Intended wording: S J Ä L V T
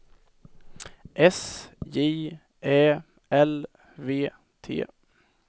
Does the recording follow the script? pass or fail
pass